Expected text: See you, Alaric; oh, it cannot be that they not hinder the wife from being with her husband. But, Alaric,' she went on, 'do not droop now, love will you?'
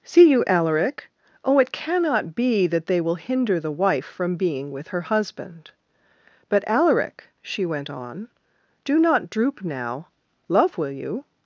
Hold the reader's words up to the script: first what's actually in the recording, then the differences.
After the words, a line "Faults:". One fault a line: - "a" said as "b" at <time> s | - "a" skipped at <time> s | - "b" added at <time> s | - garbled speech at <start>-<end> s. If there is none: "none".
See you, Alaric; oh, it cannot be that they will hinder the wife from being with her husband. But, Alaric,' she went on, 'do not droop now, love will you?'
Faults:
- "not" said as "will" at 3.0 s